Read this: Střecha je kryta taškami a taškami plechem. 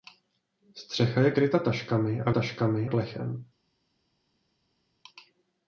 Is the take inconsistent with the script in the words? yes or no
no